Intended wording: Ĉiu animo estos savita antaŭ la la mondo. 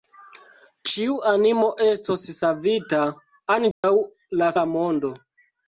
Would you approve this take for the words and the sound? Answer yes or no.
no